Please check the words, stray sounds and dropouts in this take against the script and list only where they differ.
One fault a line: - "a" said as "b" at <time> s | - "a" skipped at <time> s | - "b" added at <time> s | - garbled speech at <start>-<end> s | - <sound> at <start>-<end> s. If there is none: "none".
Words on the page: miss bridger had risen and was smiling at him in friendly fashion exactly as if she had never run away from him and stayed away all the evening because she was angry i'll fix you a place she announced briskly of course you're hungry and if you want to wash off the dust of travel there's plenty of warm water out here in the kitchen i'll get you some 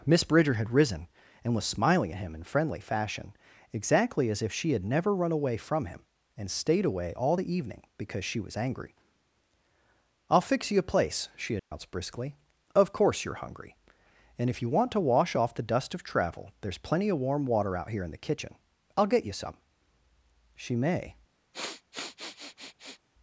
- dropout at 11.6-11.7 s
- "she may" added at 20.5 s
- sniff at 21.5-23.0 s